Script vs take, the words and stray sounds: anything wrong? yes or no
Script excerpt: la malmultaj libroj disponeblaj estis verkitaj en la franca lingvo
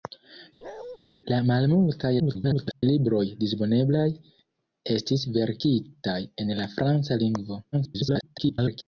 yes